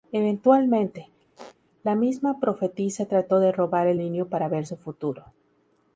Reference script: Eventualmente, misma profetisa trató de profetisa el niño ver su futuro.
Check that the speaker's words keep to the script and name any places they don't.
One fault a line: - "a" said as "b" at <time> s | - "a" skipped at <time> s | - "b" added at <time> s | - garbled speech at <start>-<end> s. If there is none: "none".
- "la" added at 1.8 s
- "profetisa" said as "robar" at 3.5 s
- "para" added at 4.3 s